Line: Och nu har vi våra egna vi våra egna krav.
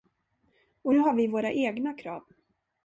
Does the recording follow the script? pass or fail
fail